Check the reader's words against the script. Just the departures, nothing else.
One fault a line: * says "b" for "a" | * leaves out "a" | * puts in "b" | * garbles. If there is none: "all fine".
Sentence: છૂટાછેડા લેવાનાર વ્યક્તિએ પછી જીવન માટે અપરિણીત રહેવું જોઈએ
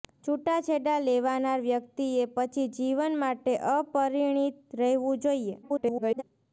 * garbles